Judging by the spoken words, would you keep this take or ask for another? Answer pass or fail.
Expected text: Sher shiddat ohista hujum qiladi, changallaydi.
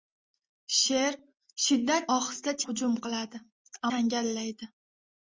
pass